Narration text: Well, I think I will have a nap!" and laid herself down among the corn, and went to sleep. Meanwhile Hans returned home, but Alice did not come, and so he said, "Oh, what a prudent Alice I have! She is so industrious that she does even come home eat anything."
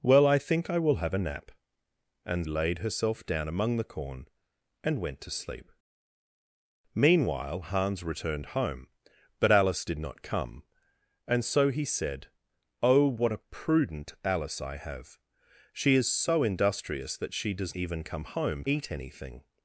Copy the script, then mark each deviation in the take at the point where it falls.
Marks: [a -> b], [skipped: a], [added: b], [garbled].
Well, I think I will have a nap!" and laid herself down among the corn, and went to sleep. Meanwhile Hans returned home, but Alice did not come, and so he said, "Oh, what a prudent Alice I have! She is so industrious that she does even come home eat anything."